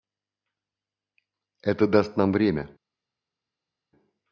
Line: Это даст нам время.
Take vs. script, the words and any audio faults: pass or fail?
pass